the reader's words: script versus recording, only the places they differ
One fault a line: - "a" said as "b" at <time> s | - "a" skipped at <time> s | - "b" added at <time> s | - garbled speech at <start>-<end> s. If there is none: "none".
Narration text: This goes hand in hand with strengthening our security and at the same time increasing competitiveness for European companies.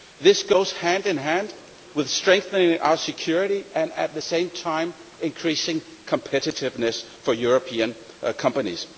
none